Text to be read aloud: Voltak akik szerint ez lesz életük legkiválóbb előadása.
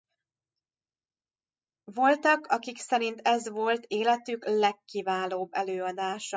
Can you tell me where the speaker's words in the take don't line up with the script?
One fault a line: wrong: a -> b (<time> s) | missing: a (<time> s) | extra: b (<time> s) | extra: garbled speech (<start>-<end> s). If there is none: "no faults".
wrong: lesz -> volt (3.5 s)